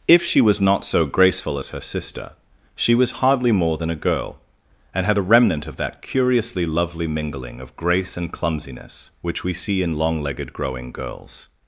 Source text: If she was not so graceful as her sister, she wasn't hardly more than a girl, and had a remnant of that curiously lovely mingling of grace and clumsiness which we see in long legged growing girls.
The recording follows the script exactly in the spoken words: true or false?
false